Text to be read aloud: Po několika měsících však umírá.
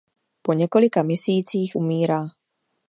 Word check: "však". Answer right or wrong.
wrong